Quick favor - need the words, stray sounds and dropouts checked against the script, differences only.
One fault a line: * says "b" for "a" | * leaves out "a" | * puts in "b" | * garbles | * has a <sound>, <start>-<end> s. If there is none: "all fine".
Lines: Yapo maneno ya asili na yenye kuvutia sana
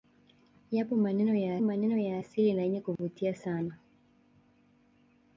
* puts in "maneno ya"
* has a dropout, 3.0-3.0 s